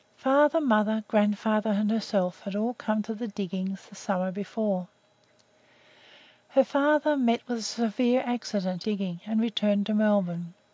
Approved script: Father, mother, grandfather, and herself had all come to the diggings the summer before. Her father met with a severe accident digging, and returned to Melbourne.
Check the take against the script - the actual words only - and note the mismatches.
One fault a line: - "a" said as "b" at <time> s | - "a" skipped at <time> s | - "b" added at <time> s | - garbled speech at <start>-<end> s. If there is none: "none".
none